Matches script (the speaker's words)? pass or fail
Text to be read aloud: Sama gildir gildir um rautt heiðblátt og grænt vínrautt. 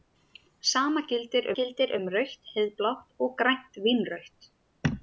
pass